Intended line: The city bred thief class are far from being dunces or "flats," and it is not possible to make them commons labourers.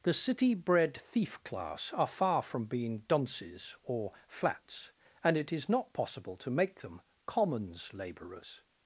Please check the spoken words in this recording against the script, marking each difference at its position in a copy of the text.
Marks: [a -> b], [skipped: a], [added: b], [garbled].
The city bred thief class are far from being dunces or "flats," and it is not possible to make them commons labourers.